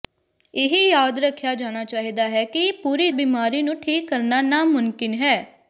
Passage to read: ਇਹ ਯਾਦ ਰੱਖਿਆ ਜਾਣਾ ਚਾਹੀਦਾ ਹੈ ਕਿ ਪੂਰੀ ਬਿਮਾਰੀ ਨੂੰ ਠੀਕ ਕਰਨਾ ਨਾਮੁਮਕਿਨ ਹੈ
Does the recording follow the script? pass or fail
pass